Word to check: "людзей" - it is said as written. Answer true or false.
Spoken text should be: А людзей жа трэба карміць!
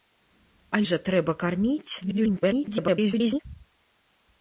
false